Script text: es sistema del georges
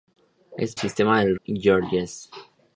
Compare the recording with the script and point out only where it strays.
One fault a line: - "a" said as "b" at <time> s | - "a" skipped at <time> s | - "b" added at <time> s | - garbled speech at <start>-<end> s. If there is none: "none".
none